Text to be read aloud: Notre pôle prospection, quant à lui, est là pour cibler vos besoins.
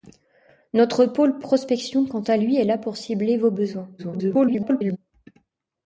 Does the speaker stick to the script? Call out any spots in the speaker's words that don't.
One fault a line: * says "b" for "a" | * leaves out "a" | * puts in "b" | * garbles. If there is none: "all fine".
* garbles